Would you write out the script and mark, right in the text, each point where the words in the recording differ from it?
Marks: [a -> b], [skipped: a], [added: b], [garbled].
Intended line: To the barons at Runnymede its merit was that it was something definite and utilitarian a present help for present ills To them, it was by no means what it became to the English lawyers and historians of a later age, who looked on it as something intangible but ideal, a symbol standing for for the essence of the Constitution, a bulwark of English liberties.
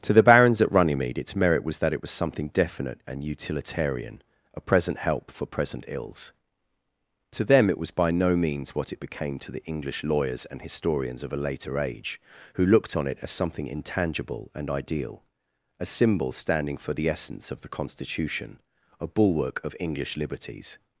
To the barons at Runnymede its merit was that it was something definite and utilitarian a present help for present ills To them, it was by no means what it became to the English lawyers and historians of a later age, who looked on it as something intangible [but -> and] ideal, a symbol standing for [skipped: for] the essence of the Constitution, a bulwark of English liberties.